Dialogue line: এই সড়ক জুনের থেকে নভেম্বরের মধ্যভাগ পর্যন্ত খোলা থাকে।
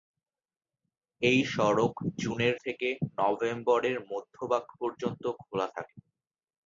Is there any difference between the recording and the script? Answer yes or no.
no